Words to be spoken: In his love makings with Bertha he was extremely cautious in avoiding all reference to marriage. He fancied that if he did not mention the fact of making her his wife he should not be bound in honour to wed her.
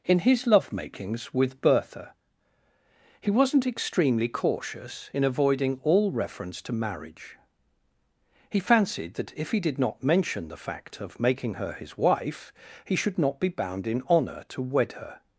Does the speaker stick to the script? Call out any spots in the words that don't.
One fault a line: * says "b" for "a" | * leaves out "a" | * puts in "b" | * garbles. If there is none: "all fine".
* says "wasn't" for "was"